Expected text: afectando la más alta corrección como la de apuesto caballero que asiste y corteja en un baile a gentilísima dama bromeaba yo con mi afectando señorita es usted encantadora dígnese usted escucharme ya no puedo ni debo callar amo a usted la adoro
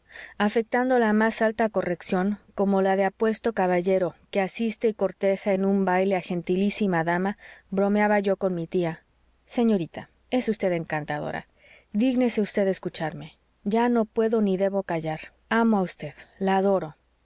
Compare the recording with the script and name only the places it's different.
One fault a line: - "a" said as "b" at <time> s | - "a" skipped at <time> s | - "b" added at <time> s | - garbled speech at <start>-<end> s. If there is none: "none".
- "afectando" said as "tía" at 8.7 s